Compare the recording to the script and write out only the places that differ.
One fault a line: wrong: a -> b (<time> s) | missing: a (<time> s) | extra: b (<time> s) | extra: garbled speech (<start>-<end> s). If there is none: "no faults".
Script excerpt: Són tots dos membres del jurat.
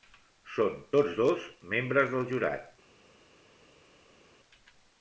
no faults